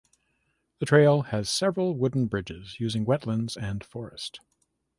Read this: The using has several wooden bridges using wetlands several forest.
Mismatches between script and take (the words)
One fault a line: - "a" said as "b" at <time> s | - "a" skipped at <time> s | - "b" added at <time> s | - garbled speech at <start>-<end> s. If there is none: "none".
- "using" said as "trail" at 0.9 s
- "several" said as "and" at 3.6 s